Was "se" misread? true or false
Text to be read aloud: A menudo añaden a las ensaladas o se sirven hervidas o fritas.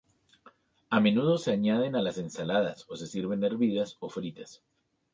false